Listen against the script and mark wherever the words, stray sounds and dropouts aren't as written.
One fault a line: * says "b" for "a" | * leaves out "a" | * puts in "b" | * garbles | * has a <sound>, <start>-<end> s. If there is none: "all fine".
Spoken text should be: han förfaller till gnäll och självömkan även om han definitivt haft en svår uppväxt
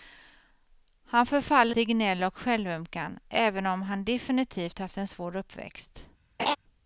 * has a laugh, 6.4-6.6 s